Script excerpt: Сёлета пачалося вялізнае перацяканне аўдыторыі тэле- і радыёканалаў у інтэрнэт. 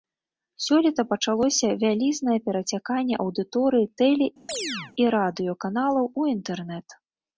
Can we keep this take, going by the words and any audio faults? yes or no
no